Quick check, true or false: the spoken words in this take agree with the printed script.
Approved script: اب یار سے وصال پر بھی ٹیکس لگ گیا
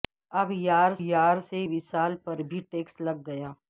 false